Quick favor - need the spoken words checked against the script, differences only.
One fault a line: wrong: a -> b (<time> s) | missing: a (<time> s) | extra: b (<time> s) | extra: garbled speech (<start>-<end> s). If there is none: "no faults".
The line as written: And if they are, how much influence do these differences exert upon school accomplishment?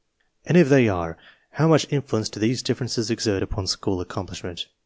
no faults